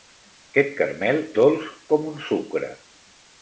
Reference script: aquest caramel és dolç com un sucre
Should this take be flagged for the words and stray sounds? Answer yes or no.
yes